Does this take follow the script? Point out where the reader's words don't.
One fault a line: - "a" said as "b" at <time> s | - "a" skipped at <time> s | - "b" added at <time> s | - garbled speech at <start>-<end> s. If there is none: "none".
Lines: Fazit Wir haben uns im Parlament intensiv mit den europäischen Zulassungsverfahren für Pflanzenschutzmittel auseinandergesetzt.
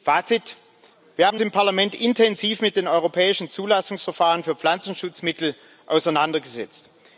- "uns" skipped at 1.4 s